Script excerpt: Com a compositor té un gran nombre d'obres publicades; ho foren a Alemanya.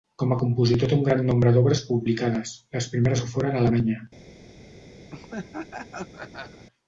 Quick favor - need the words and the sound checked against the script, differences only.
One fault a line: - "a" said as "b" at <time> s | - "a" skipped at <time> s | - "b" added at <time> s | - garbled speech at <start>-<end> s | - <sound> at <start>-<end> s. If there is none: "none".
- "les primeres" added at 2.8 s
- laugh at 5.1-6.7 s